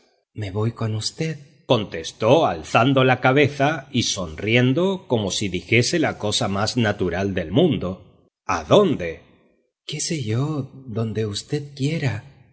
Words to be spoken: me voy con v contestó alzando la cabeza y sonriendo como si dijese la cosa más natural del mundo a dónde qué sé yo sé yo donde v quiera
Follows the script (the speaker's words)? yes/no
no